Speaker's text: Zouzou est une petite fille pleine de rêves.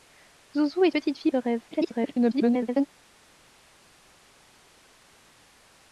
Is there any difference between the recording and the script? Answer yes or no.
yes